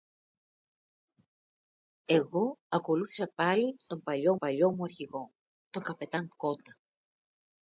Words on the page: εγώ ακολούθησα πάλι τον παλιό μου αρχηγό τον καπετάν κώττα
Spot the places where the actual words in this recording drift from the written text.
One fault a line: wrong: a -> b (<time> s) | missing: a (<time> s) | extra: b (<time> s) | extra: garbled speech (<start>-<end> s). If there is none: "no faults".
extra: παλιό (4.4 s)